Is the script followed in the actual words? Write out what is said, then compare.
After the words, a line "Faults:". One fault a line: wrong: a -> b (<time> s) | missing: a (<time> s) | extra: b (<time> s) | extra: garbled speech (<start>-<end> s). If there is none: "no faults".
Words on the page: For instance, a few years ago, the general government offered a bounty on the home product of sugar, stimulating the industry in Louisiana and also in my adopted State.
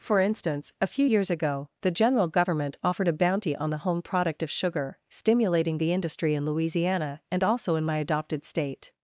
For instance, a few years ago, the general government offered a bounty on the home product of sugar, stimulating the industry in Louisiana and also in my adopted State.
Faults:
no faults